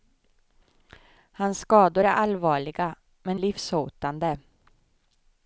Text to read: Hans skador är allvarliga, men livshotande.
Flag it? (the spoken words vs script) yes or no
no